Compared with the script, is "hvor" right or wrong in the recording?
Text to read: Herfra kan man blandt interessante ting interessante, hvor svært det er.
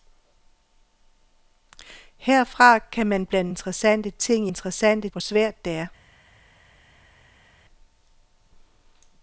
right